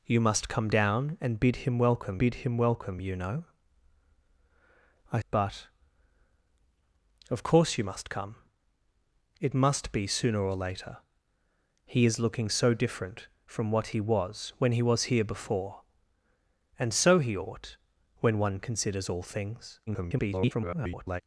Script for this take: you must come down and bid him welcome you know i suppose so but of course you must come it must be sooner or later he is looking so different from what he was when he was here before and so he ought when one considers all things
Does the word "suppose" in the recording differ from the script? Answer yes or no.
yes